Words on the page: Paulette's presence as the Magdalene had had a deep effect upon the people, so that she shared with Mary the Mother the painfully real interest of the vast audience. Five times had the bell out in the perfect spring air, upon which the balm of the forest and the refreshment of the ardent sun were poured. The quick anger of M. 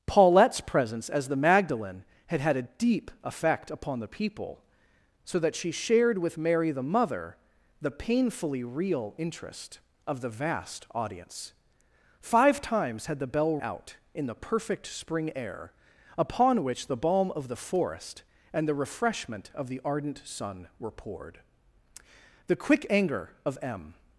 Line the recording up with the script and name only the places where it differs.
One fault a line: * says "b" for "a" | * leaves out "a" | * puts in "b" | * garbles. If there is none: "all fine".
all fine